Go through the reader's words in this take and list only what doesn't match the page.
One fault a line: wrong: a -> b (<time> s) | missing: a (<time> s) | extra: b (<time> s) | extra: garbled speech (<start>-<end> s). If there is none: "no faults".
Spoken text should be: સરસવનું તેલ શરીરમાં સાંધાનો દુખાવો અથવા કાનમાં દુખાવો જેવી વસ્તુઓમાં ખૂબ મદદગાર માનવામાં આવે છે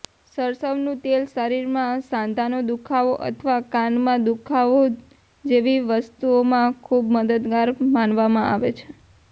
no faults